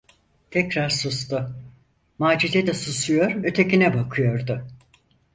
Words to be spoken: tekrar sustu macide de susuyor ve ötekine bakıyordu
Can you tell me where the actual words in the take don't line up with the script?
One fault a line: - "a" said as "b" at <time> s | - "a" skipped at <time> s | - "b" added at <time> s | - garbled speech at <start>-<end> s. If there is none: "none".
- "ve" skipped at 3.4 s